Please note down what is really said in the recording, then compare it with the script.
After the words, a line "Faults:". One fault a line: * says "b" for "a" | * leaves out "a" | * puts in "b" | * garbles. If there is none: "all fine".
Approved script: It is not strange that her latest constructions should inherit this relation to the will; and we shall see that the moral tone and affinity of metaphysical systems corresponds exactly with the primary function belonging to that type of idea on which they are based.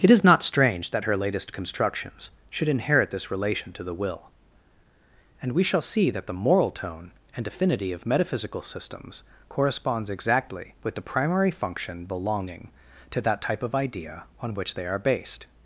It is not strange that her latest constructions should inherit this relation to the will; and we shall see that the moral tone and affinity of metaphysical systems corresponds exactly with the primary function belonging to that type of idea on which they are based.
Faults:
all fine